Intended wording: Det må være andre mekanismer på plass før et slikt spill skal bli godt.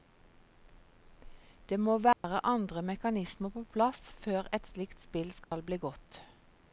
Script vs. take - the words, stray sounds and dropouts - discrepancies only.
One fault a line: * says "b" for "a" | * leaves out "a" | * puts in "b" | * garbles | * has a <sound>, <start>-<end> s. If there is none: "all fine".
* has a dropout, 2.1-2.2 s
* has a dropout, 5.4-5.5 s